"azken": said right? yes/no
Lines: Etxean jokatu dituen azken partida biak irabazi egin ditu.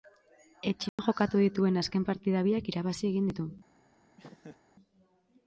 yes